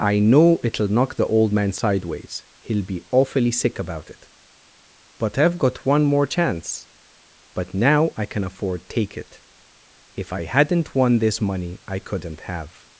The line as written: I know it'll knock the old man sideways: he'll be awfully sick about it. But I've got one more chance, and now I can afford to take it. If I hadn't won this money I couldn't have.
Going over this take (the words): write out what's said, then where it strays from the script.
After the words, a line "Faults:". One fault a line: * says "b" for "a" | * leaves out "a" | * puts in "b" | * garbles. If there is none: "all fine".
I know it'll knock the old man sideways: he'll be awfully sick about it. But I've got one more chance, but now I can afford take it. If I hadn't won this money I couldn't have.
Faults:
* says "but" for "and"
* leaves out "to"